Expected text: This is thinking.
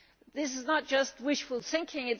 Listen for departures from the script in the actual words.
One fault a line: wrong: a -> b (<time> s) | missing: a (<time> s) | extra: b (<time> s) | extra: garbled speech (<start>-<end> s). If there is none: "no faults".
extra: not just wishful (0.7 s)